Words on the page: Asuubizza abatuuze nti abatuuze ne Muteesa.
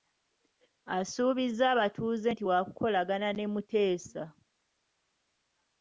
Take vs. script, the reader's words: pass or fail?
fail